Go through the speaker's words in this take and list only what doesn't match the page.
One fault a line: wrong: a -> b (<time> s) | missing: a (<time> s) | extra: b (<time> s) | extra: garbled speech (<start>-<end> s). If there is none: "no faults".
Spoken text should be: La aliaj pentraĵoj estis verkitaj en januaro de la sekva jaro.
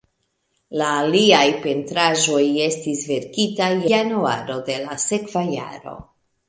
missing: en (3.7 s)